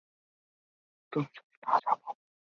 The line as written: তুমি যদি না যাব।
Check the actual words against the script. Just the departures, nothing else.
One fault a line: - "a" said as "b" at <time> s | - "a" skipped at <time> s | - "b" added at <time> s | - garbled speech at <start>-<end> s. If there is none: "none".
none